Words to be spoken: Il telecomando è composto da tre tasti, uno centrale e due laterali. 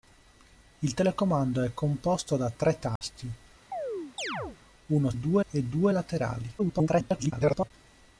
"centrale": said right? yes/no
no